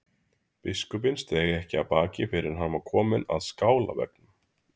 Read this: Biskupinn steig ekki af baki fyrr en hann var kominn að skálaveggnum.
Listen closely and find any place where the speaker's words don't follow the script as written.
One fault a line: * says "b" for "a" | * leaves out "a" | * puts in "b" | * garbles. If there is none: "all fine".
all fine